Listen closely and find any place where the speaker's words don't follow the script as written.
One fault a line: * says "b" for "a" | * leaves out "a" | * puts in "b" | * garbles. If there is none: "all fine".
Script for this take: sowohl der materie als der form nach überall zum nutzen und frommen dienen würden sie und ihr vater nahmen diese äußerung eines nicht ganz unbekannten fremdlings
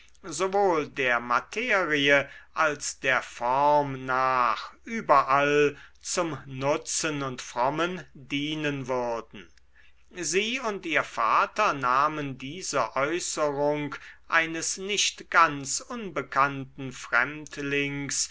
all fine